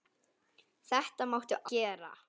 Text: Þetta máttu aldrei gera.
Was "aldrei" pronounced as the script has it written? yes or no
no